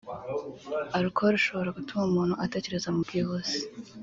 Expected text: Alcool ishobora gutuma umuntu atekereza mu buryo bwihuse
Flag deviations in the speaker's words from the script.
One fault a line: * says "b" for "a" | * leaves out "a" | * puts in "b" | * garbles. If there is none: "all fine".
* leaves out "buryo"